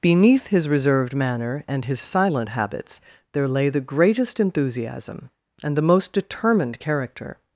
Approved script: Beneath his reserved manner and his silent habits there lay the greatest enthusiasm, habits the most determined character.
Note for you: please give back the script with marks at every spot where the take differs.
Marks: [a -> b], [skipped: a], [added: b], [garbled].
Beneath his reserved manner and his silent habits there lay the greatest enthusiasm, [habits -> and] the most determined character.